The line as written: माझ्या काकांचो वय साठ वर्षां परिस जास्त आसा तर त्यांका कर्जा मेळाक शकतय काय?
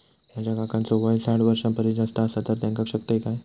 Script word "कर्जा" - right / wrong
wrong